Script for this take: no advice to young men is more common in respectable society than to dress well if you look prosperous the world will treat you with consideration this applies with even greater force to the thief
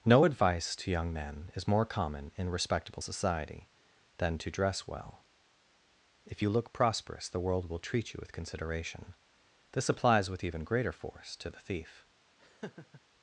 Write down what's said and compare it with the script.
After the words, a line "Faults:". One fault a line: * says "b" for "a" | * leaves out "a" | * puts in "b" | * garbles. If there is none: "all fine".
no advice to young men is more common in respectable society than to dress well if you look prosperous the world will treat you with consideration this applies with even greater force to the thief
Faults:
all fine